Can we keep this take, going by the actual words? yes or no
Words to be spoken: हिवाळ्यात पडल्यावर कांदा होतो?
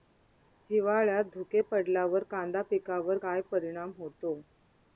no